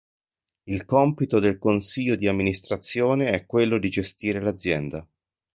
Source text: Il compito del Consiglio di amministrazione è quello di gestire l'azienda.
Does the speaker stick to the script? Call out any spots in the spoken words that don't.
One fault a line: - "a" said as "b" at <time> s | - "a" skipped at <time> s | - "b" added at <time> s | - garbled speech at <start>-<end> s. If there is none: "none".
none